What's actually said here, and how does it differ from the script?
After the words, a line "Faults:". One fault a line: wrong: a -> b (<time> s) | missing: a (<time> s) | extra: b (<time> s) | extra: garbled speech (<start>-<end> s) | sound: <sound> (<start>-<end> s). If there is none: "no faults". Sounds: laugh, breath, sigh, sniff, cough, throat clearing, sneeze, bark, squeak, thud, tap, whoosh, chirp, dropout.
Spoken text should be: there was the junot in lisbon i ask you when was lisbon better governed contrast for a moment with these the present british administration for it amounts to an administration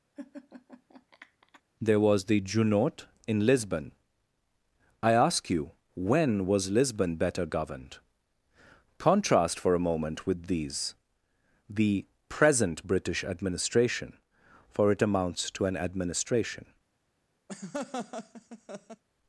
there was the junot in lisbon i ask you when was lisbon better governed contrast for a moment with these the present british administration for it amounts to an administration
Faults:
sound: laugh (0.2-1.6 s)
sound: laugh (17.5-19.0 s)